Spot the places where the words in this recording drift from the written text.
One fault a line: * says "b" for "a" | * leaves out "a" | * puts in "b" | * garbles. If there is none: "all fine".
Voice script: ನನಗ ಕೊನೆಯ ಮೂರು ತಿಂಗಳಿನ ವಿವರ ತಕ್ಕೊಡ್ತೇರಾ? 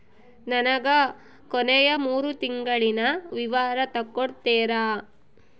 all fine